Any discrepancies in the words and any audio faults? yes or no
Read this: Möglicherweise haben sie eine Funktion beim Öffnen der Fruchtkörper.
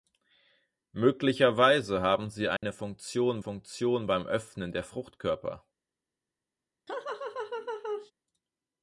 yes